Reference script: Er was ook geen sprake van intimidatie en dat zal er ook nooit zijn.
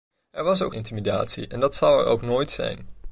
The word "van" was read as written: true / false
false